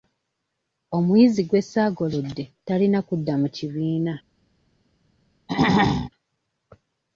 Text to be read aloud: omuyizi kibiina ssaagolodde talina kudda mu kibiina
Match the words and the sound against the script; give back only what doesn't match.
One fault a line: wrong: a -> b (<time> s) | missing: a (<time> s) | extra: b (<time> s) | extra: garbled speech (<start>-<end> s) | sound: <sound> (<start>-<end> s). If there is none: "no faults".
wrong: kibiina -> gwe (1.4 s)
sound: throat clearing (5.5-6.1 s)